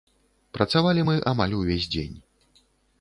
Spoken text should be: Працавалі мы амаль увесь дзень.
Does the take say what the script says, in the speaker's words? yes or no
yes